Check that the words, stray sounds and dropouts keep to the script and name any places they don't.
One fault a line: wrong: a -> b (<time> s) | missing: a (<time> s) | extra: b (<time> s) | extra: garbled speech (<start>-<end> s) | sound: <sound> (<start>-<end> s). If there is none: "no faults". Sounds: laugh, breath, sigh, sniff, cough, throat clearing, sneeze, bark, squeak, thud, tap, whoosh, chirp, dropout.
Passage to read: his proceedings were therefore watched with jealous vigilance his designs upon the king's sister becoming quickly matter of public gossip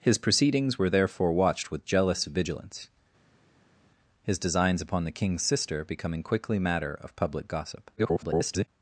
extra: garbled speech (8.0-8.7 s)